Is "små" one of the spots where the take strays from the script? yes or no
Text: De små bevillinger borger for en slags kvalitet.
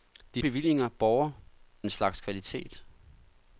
yes